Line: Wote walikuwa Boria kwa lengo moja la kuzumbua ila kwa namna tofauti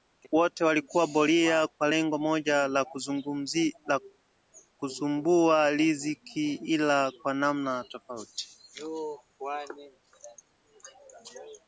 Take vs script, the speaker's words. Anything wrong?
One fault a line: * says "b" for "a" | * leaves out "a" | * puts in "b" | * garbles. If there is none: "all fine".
* puts in "riziki"